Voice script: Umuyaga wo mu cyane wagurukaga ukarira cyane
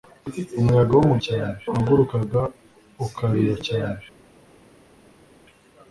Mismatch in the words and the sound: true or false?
false